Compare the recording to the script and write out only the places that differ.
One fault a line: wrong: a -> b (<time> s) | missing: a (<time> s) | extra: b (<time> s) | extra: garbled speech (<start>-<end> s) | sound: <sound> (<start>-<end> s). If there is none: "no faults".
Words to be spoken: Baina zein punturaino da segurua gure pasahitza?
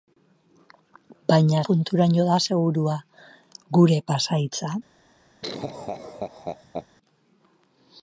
missing: zein (1.6 s)
sound: laugh (5.4-6.9 s)